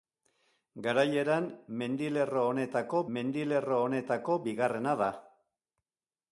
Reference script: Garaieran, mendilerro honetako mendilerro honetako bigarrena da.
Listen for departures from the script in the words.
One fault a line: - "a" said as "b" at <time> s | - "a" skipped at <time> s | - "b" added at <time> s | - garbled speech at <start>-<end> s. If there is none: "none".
none